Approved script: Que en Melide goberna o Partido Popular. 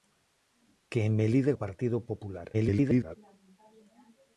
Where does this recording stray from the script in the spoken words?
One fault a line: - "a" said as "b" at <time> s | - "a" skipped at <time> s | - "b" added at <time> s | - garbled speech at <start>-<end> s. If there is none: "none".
- "goberna" skipped at 1.5 s
- garbled speech at 2.5-3.2 s